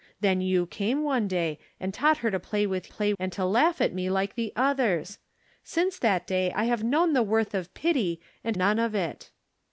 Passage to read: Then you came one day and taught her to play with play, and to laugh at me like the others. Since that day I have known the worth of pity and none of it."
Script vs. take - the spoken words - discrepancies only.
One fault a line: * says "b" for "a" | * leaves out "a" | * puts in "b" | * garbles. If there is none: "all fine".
all fine